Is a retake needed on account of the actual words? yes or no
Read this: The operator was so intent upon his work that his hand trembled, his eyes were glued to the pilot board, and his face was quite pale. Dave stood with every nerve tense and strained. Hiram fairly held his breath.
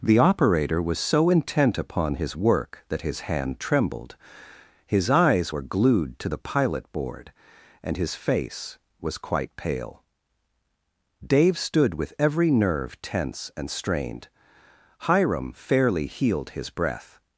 yes